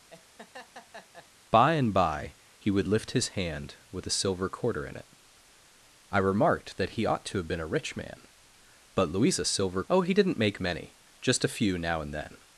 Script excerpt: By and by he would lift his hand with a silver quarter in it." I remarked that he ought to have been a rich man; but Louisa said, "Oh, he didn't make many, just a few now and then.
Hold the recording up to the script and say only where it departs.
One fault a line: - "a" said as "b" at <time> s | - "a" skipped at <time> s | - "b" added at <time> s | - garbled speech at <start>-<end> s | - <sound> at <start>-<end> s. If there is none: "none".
- laugh at 0.1-1.3 s
- "said" said as "silver" at 9.5 s